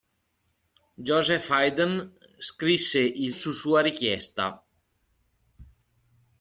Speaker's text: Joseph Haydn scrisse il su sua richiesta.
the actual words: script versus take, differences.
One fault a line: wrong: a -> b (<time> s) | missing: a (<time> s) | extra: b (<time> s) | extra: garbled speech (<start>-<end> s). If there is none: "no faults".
no faults